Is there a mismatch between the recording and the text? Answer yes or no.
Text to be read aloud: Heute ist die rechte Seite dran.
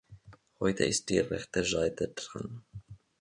no